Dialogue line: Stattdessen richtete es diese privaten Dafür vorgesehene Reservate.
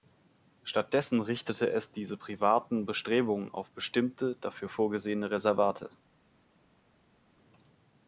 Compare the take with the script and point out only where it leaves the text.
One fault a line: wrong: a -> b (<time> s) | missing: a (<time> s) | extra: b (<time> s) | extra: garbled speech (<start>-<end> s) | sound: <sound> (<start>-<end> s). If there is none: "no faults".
extra: Bestrebungen auf bestimmte (2.8 s)